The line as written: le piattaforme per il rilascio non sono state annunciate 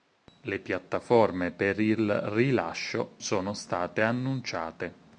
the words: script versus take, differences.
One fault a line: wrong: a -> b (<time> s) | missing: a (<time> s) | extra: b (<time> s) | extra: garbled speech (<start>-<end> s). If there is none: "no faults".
missing: non (3.2 s)